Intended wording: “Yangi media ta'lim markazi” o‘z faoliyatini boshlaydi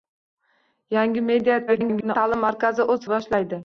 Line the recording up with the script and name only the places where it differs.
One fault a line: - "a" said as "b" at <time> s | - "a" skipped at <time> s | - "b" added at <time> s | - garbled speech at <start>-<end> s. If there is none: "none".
- garbled speech at 1.7-2.2 s
- "faoliyatini" skipped at 3.1 s